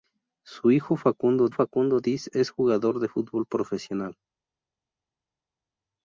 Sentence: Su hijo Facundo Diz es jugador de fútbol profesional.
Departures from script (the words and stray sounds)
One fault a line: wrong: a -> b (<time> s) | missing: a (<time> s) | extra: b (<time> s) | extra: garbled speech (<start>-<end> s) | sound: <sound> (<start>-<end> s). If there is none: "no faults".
extra: Facundo (1.5 s)